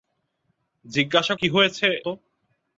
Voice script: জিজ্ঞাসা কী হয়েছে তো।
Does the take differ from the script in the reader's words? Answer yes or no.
no